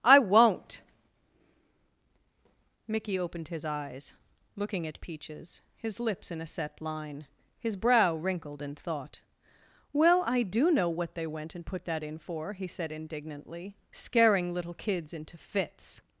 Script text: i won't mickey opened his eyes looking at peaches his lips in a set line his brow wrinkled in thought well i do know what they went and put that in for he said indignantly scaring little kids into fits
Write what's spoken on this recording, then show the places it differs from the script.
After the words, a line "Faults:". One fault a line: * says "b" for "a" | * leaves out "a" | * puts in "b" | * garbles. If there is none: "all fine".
i won't mickey opened his eyes looking at peaches his lips in a set line his brow wrinkled in thought well i do know what they went and put that in for he said indignantly scaring little kids into fits
Faults:
all fine